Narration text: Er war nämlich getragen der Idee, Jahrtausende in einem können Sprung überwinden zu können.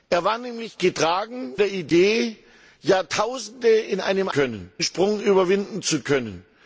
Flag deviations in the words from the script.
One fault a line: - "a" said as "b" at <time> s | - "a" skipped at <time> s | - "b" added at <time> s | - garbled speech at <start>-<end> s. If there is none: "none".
none